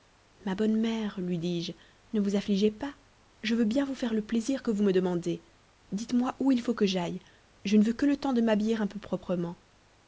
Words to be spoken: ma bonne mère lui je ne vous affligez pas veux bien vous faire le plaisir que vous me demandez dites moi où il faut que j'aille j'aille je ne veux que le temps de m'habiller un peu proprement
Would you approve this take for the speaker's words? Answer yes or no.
no